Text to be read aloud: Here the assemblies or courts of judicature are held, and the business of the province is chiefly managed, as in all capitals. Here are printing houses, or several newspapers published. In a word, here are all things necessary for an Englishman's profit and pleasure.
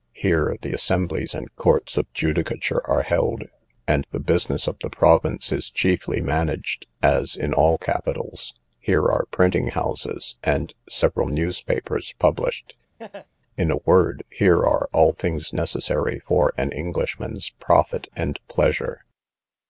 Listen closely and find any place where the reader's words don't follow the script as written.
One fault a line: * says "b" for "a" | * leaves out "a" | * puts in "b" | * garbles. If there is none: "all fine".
* says "and" for "or"
* says "and" for "or"